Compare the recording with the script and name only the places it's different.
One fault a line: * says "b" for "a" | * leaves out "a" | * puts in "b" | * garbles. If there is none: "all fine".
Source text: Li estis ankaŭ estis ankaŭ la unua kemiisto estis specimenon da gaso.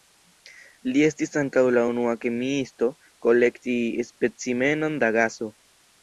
* leaves out "estis ankaŭ"
* says "kolekti" for "estis"